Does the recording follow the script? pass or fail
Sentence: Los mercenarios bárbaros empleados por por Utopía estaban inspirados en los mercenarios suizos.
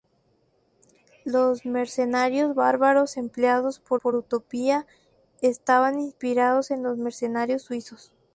pass